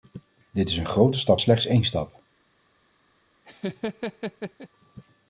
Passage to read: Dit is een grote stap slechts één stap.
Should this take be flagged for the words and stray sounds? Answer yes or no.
yes